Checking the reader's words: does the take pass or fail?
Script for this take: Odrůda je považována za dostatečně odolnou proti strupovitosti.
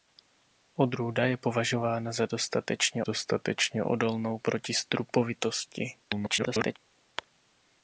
fail